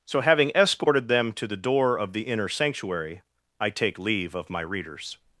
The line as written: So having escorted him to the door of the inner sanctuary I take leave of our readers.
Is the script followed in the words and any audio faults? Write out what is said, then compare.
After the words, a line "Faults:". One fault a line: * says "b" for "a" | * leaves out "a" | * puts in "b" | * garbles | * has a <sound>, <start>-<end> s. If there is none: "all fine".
So having escorted them to the door of the inner sanctuary I take leave of my readers.
Faults:
* says "them" for "him"
* says "my" for "our"